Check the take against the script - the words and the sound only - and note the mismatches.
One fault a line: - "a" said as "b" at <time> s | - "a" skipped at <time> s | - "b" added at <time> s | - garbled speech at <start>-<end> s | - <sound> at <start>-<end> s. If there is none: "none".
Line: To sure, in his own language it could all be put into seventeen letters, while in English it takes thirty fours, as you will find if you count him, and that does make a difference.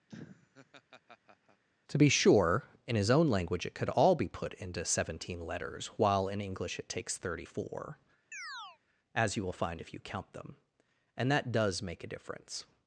- laugh at 0.1-1.6 s
- "be" added at 2.0 s
- "fours" said as "four" at 7.4 s
- chirp at 8.3-8.8 s
- "him" said as "them" at 10.3 s